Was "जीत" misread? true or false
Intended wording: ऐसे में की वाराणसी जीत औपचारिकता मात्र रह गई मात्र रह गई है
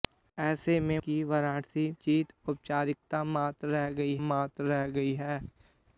false